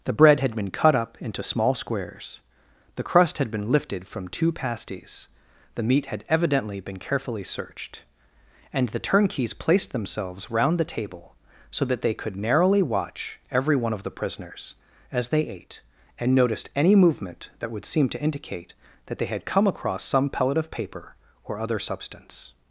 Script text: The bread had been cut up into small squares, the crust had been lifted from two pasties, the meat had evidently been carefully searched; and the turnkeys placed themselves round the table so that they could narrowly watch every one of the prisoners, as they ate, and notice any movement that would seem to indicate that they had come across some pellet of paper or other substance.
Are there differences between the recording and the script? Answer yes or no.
yes